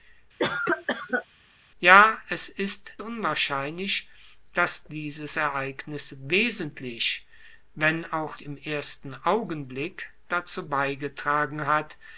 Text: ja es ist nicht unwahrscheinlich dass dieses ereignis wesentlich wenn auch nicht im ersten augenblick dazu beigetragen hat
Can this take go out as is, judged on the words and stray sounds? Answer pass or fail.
fail